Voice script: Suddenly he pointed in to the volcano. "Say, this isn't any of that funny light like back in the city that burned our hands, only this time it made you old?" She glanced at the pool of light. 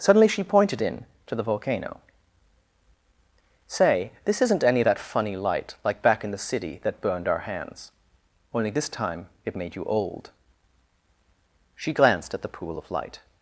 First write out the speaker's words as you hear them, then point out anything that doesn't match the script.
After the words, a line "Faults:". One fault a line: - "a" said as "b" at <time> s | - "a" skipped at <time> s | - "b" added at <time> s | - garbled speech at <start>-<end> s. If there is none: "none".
Suddenly she pointed in to the volcano. "Say, this isn't any of that funny light like back in the city that burned our hands, only this time it made you old?" She glanced at the pool of light.
Faults:
- "he" said as "she" at 0.3 s